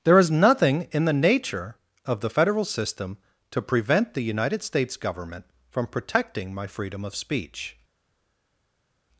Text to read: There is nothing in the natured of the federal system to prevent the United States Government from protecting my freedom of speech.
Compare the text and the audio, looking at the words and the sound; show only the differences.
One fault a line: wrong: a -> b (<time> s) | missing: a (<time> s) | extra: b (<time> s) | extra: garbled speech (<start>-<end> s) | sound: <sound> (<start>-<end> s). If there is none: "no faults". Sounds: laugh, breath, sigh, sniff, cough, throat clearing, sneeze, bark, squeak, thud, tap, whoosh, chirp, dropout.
wrong: natured -> nature (1.1 s)